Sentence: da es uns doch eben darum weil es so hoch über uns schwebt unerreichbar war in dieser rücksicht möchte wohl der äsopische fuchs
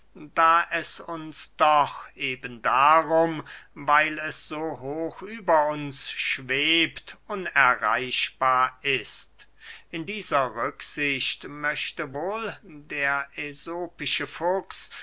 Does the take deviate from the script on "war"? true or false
true